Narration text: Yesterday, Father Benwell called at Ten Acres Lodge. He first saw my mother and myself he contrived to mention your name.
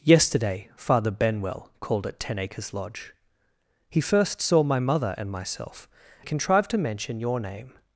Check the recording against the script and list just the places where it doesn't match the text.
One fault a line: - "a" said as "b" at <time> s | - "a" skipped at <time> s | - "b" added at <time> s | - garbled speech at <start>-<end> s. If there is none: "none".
none